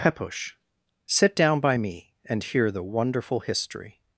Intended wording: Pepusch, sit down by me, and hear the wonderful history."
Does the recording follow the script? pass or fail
pass